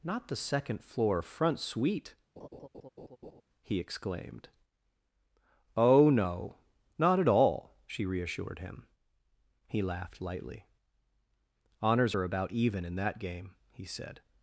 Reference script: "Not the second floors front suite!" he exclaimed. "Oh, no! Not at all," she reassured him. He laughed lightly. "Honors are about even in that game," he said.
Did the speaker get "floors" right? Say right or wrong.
wrong